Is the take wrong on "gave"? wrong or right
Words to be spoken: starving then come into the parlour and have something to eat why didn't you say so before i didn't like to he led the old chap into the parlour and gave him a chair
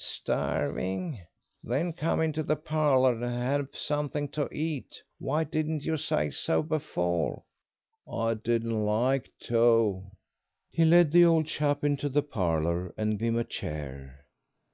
wrong